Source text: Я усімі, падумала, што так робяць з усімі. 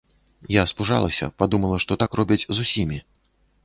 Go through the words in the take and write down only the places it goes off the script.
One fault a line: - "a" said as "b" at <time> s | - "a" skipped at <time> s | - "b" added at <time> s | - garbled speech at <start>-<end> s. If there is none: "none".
- "усімі" said as "спужалася" at 0.7 s